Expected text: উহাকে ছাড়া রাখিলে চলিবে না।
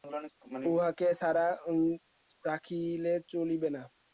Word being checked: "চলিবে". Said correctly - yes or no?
yes